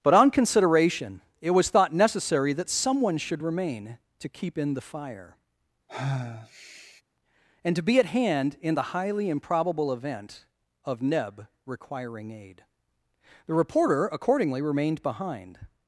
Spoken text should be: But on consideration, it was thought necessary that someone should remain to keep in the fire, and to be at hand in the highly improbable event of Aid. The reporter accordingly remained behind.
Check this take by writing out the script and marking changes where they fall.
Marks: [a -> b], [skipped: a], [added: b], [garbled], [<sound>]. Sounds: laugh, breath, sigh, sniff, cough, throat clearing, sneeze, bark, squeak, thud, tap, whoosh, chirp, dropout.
But on consideration, it was thought necessary that someone should remain to keep in the fire, [sigh] and to be at hand in the highly improbable event of [added: Neb requiring] Aid. The reporter accordingly remained behind.